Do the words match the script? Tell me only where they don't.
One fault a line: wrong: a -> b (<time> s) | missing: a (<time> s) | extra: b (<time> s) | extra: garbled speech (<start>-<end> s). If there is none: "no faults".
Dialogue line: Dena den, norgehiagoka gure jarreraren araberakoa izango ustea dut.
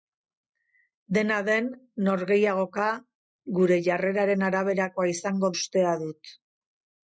no faults